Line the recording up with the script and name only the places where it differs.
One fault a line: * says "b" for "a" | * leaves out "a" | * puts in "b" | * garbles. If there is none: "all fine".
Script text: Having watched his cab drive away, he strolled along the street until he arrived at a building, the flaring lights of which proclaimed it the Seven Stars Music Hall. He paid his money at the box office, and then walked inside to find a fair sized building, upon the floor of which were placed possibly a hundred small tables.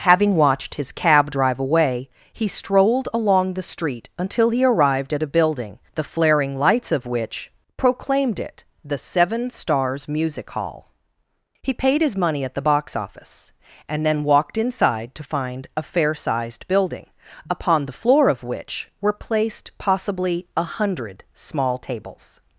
all fine